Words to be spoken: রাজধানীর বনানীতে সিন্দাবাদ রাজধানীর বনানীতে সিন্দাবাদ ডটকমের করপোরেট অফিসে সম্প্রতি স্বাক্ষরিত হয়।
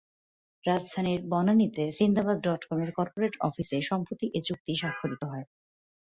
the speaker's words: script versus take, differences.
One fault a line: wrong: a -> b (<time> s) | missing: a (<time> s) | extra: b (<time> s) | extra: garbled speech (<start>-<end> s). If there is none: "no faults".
missing: রাজধানীর বনানীতে সিন্দাবাদ (2.4 s)
extra: এ চুক্তি (4.3 s)